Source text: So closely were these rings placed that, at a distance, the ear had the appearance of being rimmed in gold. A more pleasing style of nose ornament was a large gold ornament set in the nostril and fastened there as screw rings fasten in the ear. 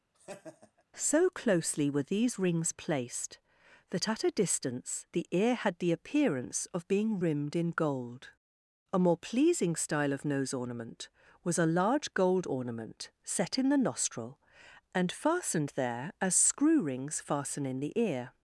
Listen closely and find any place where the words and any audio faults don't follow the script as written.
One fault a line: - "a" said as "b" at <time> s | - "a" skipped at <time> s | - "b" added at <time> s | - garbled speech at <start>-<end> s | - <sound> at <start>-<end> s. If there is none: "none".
- laugh at 0.1-0.8 s